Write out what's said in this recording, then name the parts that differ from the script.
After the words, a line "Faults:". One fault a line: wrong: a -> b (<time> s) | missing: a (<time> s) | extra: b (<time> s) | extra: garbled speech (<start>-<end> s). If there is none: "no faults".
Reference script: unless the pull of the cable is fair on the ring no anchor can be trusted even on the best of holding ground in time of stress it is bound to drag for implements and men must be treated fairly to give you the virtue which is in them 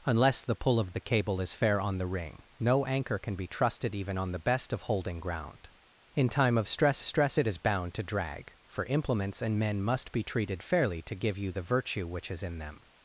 unless the pull of the cable is fair on the ring no anchor can be trusted even on the best of holding ground in time of stress stress it is bound to drag for implements and men must be treated fairly to give you the virtue which is in them
Faults:
extra: stress (7.0 s)